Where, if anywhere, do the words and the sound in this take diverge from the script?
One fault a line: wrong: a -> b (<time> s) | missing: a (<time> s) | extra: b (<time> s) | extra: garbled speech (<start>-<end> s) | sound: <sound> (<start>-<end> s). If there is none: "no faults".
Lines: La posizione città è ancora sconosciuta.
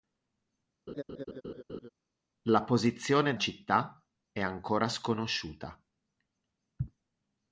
sound: laugh (0.9-1.9 s)